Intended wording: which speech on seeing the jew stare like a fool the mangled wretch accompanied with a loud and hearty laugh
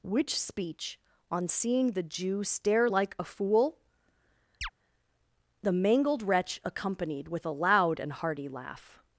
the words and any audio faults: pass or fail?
fail